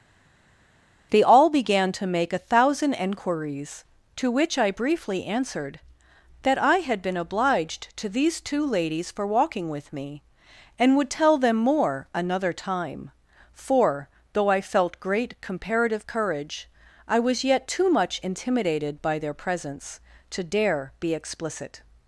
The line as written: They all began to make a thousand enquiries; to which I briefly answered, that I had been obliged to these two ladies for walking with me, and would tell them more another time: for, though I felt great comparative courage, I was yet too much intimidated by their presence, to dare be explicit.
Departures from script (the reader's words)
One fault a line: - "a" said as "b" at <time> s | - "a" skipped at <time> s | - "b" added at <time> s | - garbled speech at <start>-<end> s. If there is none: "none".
none